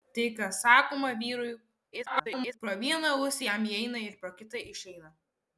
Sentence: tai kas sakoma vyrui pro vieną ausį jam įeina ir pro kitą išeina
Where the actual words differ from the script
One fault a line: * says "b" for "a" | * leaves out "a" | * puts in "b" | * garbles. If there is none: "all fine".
* garbles